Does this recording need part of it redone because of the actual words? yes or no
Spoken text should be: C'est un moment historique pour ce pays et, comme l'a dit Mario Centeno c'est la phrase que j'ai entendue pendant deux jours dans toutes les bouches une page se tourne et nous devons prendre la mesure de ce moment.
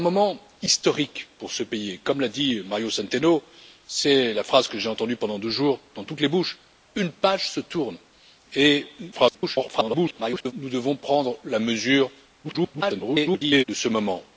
yes